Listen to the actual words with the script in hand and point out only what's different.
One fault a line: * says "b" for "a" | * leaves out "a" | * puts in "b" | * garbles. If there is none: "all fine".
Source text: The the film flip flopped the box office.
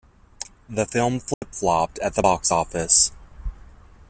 * leaves out "the"
* puts in "at"